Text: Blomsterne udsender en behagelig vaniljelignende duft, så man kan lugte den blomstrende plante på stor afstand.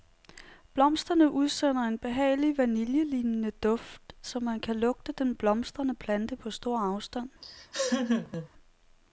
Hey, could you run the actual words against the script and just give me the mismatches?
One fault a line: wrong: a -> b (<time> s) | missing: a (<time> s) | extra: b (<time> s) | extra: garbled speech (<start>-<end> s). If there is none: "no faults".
no faults